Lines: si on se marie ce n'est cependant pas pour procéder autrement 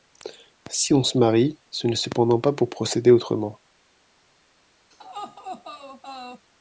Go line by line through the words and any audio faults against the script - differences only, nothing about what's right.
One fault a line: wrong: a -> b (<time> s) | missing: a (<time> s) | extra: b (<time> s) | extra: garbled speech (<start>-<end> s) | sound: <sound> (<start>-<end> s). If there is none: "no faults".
sound: laugh (4.9-6.5 s)